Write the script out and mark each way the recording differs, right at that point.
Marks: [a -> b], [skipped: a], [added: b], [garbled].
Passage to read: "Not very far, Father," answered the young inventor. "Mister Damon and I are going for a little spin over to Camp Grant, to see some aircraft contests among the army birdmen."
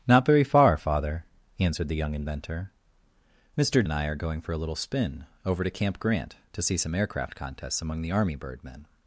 "Not very far, Father," answered the young inventor. "Mister [skipped: Damon] and I are going for a little spin over to Camp Grant, to see some aircraft contests among the army birdmen."